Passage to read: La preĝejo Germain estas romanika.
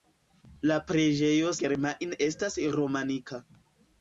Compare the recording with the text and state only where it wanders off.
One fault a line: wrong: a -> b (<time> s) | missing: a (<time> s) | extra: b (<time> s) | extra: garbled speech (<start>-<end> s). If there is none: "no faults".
no faults